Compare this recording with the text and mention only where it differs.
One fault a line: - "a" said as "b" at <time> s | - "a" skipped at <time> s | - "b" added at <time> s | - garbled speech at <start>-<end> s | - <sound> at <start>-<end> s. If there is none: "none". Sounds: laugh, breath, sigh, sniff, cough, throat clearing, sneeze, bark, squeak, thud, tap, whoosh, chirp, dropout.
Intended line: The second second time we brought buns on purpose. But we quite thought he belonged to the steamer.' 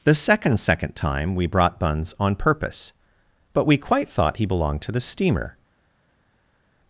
none